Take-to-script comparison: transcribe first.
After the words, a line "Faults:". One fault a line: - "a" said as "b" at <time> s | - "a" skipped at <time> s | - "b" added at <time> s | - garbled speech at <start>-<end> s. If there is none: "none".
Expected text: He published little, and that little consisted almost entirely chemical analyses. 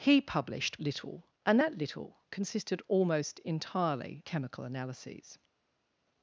He published little, and that little consisted almost entirely chemical analyses.
Faults:
none